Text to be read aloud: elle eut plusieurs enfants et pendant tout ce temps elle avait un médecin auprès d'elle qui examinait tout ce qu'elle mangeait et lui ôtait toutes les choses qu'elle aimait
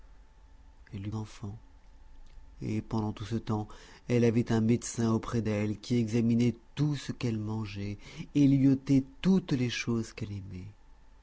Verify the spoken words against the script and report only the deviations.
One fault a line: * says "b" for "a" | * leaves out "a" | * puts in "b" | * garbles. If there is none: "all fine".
* leaves out "plusieurs"